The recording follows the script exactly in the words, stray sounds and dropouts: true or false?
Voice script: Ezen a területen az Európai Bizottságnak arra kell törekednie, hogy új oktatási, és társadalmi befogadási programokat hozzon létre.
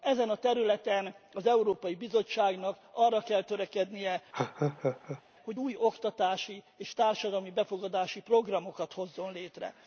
false